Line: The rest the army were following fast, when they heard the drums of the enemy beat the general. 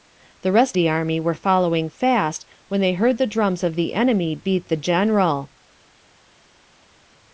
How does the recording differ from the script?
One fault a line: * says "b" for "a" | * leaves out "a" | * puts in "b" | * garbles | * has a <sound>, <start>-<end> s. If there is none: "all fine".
all fine